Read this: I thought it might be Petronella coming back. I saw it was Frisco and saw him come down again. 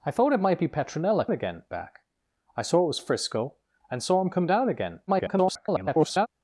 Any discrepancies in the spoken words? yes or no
yes